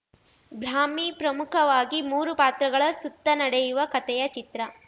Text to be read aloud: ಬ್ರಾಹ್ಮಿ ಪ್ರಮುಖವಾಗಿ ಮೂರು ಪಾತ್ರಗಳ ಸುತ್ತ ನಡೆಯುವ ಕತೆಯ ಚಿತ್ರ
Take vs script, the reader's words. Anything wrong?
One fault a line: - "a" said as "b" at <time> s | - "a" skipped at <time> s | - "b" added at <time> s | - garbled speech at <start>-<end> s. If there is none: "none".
none